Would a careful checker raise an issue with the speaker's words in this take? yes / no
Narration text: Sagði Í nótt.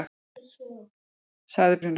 no